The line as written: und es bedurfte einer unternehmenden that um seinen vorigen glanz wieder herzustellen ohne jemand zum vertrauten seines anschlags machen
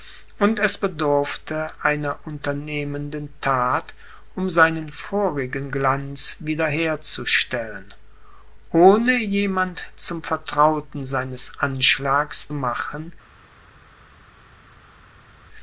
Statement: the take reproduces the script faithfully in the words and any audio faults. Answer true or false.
true